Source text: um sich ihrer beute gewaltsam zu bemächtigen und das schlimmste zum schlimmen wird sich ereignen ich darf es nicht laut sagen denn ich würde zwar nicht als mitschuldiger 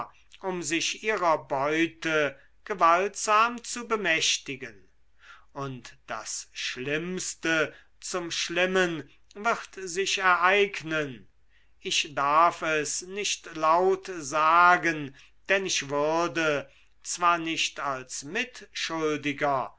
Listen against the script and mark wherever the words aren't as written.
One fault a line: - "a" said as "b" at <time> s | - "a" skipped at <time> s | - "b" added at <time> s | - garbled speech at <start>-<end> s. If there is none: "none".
none